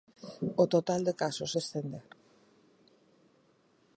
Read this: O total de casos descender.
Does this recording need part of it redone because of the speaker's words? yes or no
no